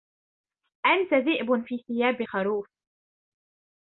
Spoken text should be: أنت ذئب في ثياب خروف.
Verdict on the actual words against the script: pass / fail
pass